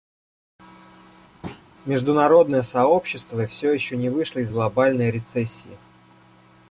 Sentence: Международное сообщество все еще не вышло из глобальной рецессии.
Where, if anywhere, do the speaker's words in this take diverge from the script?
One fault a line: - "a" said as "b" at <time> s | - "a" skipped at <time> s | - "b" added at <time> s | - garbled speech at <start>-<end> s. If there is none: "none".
none